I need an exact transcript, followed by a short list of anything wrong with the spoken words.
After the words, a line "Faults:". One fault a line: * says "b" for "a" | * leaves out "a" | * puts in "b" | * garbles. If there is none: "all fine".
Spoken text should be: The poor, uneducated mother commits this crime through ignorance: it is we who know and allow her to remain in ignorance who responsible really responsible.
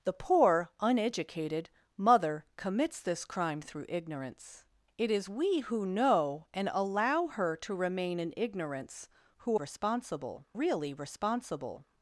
The poor, uneducated mother commits this crime through ignorance: it is we who know and allow her to remain in ignorance who responsible really responsible.
Faults:
all fine